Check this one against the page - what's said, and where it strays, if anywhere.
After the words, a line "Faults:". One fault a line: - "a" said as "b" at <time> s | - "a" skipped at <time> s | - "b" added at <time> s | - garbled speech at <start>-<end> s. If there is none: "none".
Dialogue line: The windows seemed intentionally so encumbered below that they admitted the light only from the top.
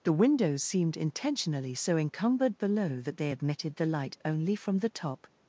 The windows seemed intentionally so encumbered below that they admitted the light only from the top.
Faults:
none